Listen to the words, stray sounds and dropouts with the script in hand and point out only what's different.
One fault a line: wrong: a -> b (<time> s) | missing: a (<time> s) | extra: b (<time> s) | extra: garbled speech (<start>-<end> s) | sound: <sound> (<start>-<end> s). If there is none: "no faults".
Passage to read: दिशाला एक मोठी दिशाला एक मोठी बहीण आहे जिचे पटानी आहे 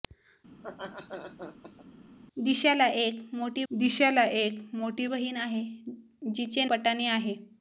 sound: laugh (0.5-1.9 s)